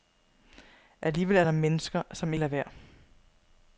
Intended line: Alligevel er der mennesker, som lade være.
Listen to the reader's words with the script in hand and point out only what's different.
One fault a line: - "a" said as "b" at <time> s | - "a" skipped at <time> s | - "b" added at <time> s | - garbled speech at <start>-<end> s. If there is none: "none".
none